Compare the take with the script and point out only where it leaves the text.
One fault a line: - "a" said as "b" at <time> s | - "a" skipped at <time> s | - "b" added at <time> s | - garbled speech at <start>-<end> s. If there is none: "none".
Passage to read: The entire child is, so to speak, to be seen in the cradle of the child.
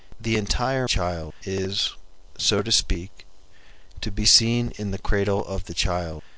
none